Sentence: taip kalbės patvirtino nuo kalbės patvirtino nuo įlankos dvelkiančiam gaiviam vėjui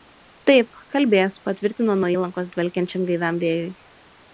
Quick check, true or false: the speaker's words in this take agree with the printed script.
false